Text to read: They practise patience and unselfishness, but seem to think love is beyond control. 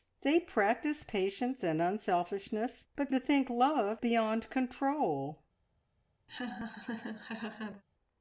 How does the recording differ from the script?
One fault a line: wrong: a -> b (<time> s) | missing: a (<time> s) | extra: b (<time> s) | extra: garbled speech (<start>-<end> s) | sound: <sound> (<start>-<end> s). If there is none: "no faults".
missing: seem (3.1 s)
missing: is (4.0 s)
sound: laugh (6.3-7.8 s)